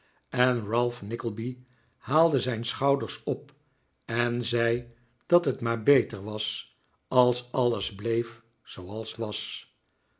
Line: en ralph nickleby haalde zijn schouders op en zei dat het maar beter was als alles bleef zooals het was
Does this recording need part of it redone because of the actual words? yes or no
yes